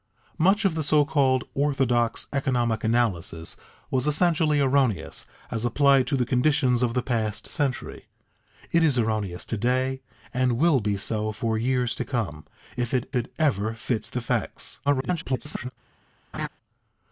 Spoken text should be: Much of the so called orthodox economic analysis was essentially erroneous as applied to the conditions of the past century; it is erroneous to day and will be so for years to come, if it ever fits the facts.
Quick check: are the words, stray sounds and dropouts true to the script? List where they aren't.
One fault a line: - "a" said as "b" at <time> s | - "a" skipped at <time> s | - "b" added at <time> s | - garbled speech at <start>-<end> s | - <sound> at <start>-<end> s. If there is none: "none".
- "it" added at 13.2 s
- garbled speech at 14.9-15.7 s
- laugh at 16.3-16.5 s